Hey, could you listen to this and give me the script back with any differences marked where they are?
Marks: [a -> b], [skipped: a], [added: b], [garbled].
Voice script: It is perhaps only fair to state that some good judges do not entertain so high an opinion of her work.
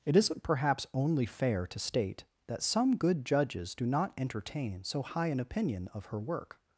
It [is -> isn't] perhaps only fair to state that some good judges do not entertain so high an opinion of her work.